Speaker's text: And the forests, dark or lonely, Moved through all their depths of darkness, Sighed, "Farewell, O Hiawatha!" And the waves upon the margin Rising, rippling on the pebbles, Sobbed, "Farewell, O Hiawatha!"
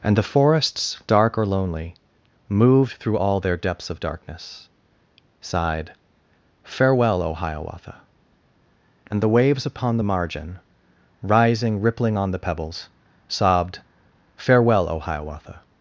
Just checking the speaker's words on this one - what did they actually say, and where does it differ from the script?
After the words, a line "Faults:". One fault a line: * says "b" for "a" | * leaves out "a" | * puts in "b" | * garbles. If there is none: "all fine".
And the forests, dark or lonely, Moved through all their depths of darkness, Sighed, "Farewell, O Hiawatha!" And the waves upon the margin Rising, rippling on the pebbles, Sobbed, "Farewell, O Hiawatha!"
Faults:
all fine